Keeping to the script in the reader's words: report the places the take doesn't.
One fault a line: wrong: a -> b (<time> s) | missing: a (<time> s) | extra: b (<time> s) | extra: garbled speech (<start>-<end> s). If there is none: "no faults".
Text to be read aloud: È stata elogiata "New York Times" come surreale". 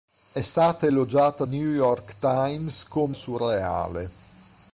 no faults